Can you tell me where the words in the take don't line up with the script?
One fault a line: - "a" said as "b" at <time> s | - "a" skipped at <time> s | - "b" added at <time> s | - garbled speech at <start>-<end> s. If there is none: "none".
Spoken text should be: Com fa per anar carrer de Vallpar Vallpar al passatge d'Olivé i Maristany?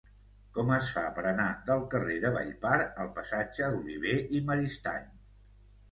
- "es" added at 0.8 s
- "del" added at 1.7 s
- "Vallpar" skipped at 2.8 s